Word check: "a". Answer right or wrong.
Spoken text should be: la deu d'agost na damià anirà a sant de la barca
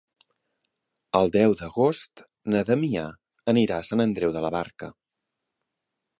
right